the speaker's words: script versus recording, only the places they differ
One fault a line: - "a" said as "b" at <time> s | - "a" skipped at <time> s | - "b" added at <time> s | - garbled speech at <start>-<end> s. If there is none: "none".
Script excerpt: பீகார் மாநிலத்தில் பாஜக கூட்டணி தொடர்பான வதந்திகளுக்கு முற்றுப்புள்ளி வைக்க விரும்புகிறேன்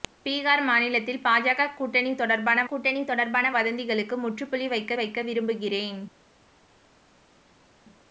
- "கூட்டணி தொடர்பான" added at 2.6 s
- "வைக்க" added at 4.9 s